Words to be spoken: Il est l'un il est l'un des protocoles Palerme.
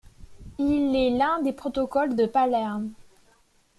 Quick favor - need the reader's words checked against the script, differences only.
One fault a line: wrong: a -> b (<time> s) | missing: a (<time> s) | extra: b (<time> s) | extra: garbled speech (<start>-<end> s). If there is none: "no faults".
missing: il est l'un (1.4 s)
extra: de (2.1 s)